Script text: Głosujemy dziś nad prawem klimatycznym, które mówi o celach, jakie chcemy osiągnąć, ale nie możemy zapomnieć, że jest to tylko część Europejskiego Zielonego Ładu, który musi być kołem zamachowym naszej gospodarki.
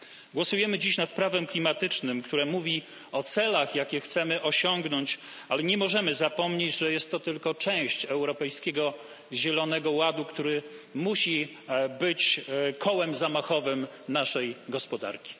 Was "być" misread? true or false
false